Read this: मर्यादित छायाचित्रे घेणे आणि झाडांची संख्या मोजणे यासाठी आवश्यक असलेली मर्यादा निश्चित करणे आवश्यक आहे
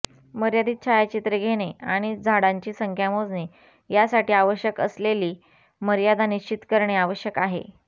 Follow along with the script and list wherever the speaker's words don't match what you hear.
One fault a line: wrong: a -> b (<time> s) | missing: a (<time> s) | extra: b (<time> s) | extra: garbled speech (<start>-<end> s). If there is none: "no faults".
no faults